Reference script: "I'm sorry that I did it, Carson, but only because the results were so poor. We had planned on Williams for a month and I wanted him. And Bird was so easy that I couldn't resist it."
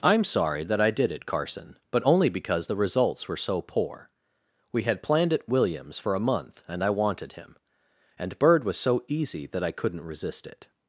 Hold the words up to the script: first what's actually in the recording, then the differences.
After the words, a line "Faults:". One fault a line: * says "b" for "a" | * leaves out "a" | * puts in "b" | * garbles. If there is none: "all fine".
"I'm sorry that I did it, Carson, but only because the results were so poor. We had planned at Williams for a month and I wanted him. And Bird was so easy that I couldn't resist it."
Faults:
* says "at" for "on"